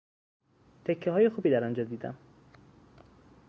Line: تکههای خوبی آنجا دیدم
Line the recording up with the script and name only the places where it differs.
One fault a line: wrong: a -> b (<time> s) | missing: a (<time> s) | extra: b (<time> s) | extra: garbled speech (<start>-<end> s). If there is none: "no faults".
extra: در (1.5 s)